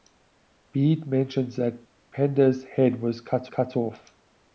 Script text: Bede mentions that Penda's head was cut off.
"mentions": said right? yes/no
yes